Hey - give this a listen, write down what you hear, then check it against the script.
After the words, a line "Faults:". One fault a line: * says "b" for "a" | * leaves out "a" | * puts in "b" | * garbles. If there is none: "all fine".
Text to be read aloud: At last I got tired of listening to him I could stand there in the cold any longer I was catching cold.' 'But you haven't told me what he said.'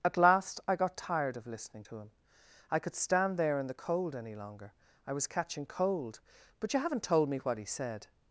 At last I got tired of listening to him I could stand there in the cold any longer I was catching cold.' 'But you haven't told me what he said.'
Faults:
all fine